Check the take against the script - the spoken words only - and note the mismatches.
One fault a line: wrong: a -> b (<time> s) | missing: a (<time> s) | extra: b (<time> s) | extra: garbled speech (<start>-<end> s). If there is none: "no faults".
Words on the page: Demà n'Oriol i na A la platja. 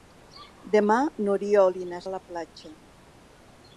no faults